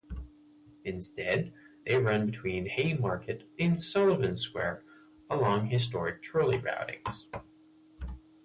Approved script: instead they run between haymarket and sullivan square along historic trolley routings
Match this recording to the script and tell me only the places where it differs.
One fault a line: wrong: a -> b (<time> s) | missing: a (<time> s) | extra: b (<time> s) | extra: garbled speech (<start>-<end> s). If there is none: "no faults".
no faults